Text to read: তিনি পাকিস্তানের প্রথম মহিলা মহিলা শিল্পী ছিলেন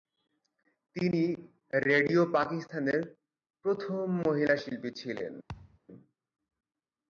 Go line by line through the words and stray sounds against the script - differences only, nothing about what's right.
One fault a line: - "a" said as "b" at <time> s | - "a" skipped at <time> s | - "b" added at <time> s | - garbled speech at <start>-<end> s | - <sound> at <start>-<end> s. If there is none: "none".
- "রেডিও" added at 1.9 s
- "মহিলা" skipped at 4.5 s
- thud at 5.5-5.8 s